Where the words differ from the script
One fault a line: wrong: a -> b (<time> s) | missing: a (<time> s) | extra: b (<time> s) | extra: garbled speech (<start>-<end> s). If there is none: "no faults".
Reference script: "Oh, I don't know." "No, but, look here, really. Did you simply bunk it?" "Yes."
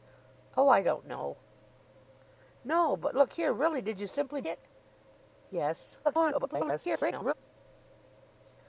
missing: bunk (4.4 s)
extra: garbled speech (6.0-7.3 s)